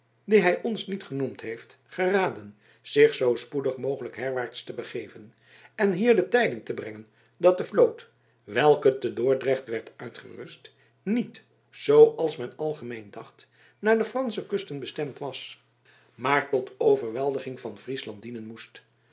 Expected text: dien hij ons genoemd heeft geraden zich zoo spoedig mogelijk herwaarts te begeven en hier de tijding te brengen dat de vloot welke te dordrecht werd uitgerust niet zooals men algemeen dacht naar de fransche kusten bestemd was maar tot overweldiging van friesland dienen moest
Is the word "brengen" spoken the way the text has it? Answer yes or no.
yes